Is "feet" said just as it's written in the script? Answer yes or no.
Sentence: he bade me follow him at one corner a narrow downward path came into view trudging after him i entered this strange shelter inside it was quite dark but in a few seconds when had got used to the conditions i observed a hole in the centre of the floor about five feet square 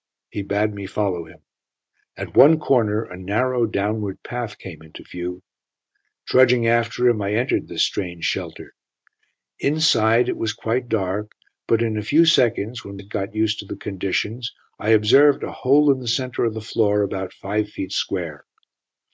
yes